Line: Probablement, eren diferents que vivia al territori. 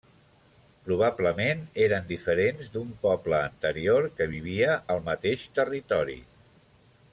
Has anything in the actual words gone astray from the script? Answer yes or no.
yes